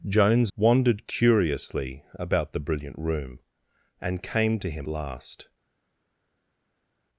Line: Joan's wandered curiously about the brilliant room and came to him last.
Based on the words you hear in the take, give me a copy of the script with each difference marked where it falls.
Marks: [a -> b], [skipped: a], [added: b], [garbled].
Joan's wandered curiously about the brilliant room and came to him last.